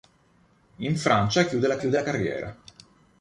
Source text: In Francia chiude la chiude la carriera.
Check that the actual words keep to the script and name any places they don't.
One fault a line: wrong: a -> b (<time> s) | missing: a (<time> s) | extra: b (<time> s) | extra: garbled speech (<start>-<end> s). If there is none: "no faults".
no faults